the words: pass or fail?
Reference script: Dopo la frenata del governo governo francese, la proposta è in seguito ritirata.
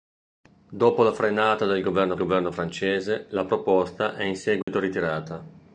pass